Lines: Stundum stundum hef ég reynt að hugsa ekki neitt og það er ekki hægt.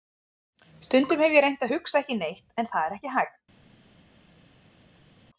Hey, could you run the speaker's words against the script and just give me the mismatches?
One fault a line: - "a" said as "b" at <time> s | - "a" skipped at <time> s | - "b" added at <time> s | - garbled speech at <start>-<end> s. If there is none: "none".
- "stundum" skipped at 1.2 s
- "og" said as "en" at 2.6 s